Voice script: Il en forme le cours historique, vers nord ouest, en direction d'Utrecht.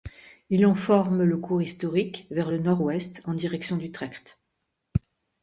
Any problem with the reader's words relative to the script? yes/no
yes